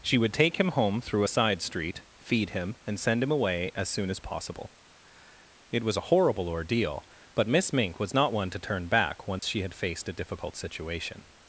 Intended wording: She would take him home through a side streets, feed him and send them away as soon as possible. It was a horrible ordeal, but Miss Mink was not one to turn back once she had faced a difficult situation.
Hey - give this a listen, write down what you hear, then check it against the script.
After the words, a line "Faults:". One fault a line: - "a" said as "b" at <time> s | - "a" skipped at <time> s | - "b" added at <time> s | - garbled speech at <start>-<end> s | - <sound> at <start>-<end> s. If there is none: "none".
She would take him home through a side street, feed him and send him away as soon as possible. It was a horrible ordeal, but Miss Mink was not one to turn back once she had faced a difficult situation.
Faults:
- "streets" said as "street" at 1.6 s
- "them" said as "him" at 3.2 s
- dropout at 9.4-9.4 s